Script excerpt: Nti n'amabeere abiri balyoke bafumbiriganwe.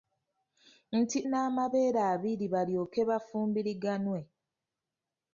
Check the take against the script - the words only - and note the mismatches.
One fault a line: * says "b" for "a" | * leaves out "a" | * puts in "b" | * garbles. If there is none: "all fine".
all fine